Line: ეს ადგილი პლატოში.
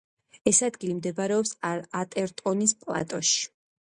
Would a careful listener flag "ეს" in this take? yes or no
no